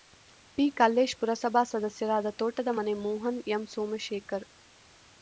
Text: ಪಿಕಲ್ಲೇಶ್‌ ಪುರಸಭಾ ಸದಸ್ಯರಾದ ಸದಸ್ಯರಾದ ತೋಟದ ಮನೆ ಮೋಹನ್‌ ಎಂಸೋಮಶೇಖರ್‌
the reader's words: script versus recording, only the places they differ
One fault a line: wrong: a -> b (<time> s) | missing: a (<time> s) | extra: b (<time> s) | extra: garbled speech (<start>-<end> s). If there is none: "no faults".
missing: ಸದಸ್ಯರಾದ (2.3 s)